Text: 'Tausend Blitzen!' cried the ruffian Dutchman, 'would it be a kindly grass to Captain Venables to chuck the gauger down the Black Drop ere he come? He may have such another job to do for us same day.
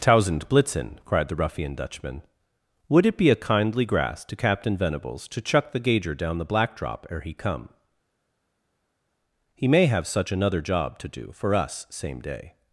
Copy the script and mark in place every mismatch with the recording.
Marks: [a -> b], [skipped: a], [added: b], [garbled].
'Tausend Blitzen!' cried the ruffian Dutchman, 'would it be a kindly grass to Captain Venables to chuck the gauger down the Black Drop ere he come? He may have such another job to do for us same day.